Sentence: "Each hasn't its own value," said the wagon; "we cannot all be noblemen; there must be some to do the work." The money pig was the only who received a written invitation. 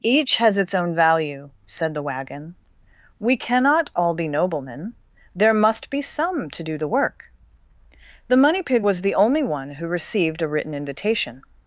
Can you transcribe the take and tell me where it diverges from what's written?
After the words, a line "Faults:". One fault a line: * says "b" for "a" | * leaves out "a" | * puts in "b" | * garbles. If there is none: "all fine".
"Each has its own value," said the wagon; "we cannot all be noblemen; there must be some to do the work." The money pig was the only one who received a written invitation.
Faults:
* says "has" for "hasn't"
* puts in "one"